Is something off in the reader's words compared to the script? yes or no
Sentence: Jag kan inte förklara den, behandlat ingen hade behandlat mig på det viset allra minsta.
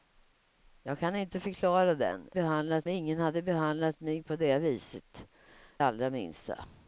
no